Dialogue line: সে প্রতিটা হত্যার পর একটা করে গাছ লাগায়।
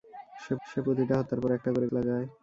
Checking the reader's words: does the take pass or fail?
fail